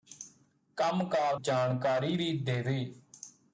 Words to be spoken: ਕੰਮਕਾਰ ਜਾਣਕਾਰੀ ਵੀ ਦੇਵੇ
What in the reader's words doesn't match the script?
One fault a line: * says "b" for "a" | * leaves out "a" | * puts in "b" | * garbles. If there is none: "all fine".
all fine